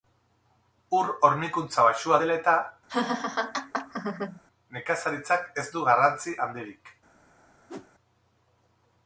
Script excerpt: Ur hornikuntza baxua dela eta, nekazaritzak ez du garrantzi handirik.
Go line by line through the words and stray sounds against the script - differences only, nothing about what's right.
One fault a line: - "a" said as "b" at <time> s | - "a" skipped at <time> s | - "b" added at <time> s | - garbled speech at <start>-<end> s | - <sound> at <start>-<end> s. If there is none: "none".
- laugh at 2.9-4.4 s
- whoosh at 7.7-7.9 s